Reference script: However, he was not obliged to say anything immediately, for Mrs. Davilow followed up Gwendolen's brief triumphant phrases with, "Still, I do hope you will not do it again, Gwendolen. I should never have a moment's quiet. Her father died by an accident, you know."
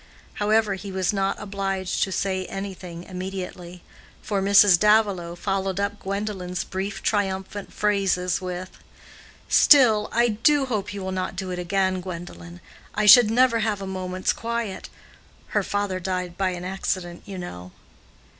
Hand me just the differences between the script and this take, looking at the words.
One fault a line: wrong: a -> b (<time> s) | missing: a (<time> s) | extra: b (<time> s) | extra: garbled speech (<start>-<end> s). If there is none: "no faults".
no faults